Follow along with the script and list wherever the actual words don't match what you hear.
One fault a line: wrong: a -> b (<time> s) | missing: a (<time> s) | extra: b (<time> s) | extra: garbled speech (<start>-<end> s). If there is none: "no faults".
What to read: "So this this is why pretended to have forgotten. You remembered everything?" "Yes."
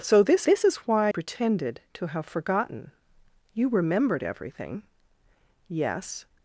no faults